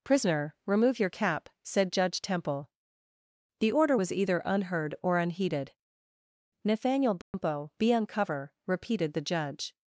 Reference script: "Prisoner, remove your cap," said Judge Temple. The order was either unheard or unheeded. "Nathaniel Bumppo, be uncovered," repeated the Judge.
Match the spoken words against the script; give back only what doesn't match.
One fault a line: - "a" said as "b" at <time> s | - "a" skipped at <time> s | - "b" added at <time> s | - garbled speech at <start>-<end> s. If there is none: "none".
- "uncovered" said as "uncover" at 7.9 s